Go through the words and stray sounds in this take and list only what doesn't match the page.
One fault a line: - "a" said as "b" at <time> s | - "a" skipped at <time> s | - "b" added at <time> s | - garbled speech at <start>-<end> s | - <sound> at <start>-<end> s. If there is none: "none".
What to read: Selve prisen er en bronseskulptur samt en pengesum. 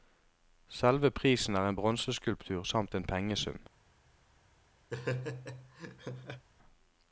- laugh at 4.9-6.5 s